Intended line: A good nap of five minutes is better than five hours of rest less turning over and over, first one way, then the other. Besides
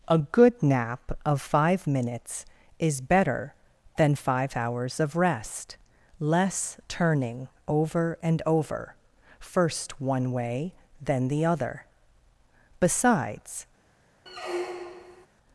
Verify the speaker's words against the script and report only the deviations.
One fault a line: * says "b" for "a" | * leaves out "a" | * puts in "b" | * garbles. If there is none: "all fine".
all fine